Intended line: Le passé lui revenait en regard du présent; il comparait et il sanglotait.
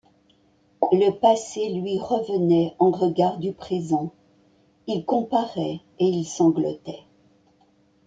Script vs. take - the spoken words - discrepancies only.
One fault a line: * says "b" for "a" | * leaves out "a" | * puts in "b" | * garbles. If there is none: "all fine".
all fine